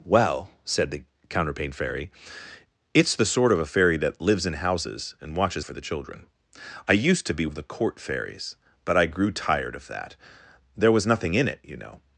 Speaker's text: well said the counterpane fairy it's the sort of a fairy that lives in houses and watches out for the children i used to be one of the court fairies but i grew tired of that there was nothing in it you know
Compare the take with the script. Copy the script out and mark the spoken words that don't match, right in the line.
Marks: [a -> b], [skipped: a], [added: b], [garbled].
well said the counterpane fairy it's the sort of a fairy that lives in houses and watches [skipped: out] for the children i used to be [skipped: one] of the court fairies but i grew tired of that there was nothing in it you know